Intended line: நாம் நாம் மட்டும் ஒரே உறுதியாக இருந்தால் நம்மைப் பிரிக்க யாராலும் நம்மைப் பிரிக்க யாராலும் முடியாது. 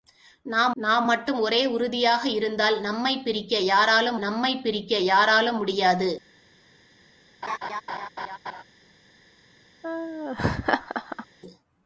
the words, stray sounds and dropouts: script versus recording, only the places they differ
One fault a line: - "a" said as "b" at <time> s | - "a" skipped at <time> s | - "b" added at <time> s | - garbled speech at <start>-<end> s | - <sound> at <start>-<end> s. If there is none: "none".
- laugh at 7.4-8.6 s
- laugh at 9.8-11.3 s